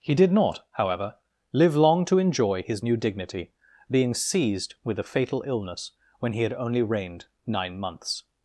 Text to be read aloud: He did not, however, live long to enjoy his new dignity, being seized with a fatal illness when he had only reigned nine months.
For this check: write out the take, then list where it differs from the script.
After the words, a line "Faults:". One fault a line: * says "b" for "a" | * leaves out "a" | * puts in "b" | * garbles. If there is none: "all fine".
He did not, however, live long to enjoy his new dignity, being seized with a fatal illness when he had only reigned nine months.
Faults:
all fine